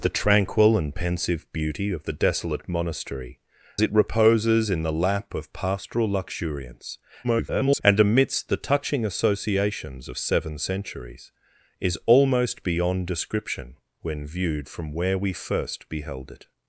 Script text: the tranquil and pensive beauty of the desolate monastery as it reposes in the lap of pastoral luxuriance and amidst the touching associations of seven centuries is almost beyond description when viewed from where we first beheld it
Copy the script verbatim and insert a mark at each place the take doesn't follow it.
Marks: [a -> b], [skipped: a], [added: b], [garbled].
the tranquil and pensive beauty of the desolate monastery [skipped: as] it reposes in the lap of pastoral luxuriance [garbled] and amidst the touching associations of seven centuries is almost beyond description when viewed from where we first beheld it